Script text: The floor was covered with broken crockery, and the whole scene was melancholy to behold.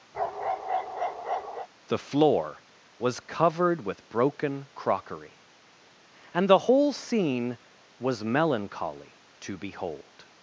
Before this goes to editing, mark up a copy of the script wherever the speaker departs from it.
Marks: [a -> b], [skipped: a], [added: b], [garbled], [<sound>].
[bark] The floor was covered with broken crockery, and the whole scene was melancholy to behold.